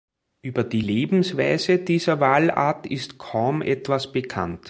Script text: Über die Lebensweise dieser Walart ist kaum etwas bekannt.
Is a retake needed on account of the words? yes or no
no